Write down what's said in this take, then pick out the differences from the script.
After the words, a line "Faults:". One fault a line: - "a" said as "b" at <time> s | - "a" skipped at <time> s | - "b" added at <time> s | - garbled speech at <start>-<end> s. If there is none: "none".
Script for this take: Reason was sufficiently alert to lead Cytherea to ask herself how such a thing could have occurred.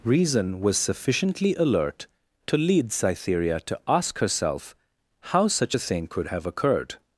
Reason was sufficiently alert to lead Cytherea to ask herself how such a thing could have occurred.
Faults:
none